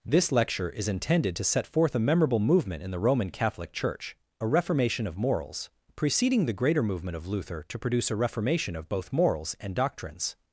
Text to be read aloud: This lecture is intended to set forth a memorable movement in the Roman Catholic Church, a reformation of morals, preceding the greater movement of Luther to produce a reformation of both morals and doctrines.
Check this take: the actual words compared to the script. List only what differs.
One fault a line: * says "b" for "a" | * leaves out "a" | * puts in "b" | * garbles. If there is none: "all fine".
all fine